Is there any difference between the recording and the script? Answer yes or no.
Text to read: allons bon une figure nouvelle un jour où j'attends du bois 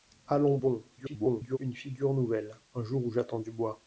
yes